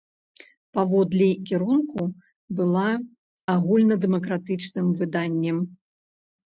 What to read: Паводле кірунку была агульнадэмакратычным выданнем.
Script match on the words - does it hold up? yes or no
yes